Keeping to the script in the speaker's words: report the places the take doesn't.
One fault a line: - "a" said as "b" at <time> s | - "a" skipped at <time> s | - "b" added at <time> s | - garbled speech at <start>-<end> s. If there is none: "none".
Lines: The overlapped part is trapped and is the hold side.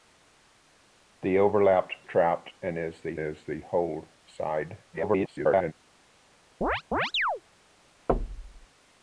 - "part" said as "trapped and" at 2.0 s
- "trapped and" said as "the" at 3.0 s
- garbled speech at 4.9-5.7 s